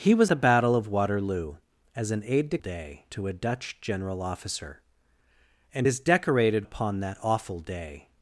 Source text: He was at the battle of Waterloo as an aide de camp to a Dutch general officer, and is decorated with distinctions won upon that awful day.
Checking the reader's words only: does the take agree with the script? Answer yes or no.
no